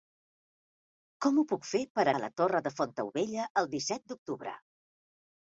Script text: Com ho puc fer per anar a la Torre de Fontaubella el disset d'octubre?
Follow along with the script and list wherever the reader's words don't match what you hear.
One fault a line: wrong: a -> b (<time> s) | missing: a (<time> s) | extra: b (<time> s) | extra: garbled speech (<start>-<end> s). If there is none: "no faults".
missing: anar (2.1 s)